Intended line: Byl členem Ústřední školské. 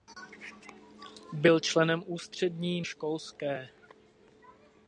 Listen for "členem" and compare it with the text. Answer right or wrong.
right